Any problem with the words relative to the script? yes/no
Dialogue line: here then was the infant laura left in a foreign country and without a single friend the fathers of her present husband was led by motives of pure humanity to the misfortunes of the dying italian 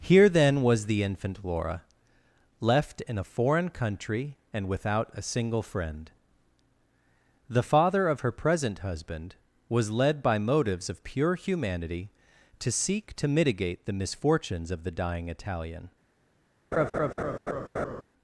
yes